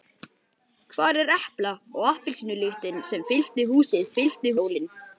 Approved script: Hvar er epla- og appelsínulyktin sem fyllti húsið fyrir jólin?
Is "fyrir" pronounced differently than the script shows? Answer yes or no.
yes